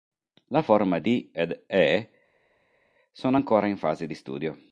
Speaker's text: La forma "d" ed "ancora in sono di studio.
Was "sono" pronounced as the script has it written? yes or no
no